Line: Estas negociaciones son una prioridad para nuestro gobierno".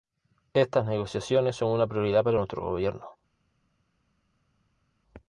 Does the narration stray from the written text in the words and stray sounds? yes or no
no